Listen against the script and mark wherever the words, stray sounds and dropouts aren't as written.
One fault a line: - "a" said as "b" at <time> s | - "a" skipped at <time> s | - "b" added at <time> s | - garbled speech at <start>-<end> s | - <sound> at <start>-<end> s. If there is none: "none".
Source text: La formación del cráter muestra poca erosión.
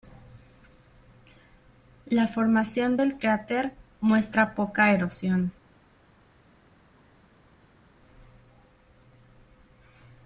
none